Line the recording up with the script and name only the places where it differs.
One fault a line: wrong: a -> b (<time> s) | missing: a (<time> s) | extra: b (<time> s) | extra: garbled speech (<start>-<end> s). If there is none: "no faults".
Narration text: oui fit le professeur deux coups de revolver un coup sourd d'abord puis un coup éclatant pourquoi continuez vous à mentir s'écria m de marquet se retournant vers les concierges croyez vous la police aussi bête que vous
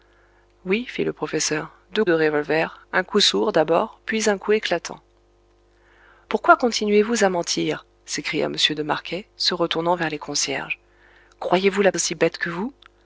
missing: coups (2.0 s)
missing: police (11.9 s)